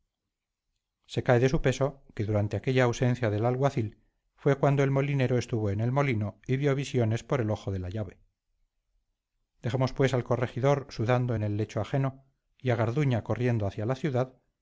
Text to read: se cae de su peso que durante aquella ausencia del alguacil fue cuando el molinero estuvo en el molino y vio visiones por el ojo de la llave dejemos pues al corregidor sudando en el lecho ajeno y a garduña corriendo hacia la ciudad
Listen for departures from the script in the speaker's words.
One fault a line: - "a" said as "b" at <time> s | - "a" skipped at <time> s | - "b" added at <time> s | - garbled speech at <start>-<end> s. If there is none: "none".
none